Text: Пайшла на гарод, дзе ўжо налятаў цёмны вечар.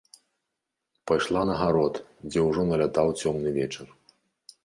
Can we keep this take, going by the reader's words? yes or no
yes